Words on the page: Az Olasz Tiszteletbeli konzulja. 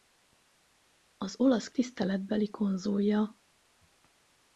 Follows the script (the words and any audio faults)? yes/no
yes